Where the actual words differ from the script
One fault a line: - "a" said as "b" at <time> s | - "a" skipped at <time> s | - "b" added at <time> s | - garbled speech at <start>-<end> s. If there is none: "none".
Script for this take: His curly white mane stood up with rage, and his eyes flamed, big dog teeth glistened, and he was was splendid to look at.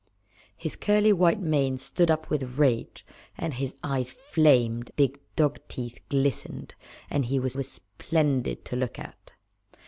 none